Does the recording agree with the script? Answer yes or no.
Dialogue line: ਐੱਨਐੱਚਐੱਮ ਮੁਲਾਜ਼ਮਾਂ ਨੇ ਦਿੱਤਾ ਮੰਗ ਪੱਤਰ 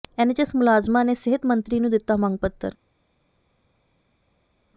no